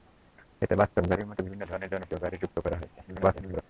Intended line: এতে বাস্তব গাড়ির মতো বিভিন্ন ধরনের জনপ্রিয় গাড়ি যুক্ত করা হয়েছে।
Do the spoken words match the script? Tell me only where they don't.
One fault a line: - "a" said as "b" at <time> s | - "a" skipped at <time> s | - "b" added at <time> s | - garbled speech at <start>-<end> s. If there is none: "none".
- garbled speech at 3.1-3.6 s